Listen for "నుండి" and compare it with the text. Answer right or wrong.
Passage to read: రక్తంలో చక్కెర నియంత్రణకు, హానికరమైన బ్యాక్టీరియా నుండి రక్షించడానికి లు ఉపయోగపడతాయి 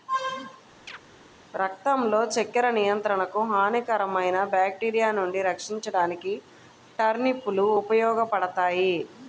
right